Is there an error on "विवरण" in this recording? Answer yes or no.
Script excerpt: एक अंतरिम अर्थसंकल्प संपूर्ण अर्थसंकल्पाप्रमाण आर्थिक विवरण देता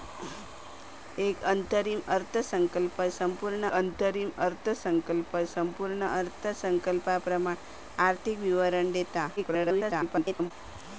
no